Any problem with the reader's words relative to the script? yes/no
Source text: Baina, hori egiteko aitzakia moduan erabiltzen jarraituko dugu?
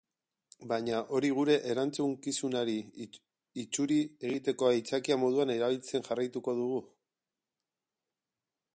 yes